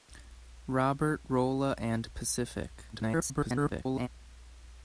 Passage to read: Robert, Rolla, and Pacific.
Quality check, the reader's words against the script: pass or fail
fail